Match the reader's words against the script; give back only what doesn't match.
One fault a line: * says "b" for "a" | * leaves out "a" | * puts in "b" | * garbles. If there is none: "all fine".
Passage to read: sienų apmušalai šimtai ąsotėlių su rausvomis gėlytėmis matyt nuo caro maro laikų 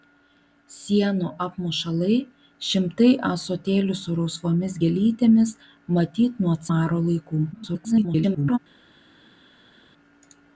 * leaves out "caro"
* garbles